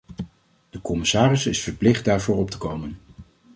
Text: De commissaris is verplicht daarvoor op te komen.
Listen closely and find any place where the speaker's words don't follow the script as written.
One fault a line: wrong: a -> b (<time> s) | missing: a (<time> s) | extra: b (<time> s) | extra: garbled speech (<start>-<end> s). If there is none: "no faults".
no faults